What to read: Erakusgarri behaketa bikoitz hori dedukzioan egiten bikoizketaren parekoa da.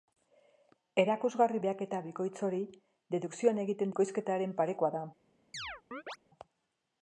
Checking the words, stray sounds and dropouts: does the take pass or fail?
fail